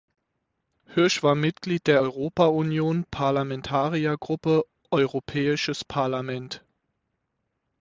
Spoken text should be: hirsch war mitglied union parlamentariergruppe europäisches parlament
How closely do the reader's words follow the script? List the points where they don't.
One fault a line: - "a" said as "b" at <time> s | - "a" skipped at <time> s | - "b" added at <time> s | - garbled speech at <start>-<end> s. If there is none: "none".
- "der europa" added at 1.9 s